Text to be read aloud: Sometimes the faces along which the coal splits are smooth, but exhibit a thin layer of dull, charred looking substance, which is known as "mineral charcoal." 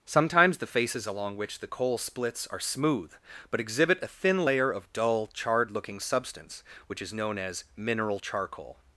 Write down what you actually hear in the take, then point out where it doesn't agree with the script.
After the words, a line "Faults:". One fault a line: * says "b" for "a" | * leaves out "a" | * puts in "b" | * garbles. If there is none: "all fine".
Sometimes the faces along which the coal splits are smooth, but exhibit a thin layer of dull, charred looking substance, which is known as "mineral charcoal."
Faults:
all fine